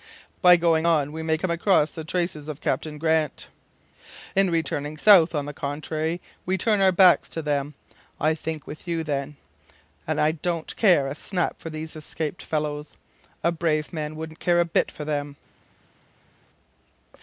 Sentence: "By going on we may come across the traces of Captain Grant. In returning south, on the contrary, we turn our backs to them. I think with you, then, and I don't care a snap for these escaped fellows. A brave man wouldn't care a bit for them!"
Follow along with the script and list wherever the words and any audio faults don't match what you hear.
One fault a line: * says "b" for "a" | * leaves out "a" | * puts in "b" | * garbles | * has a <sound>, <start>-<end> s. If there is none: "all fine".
all fine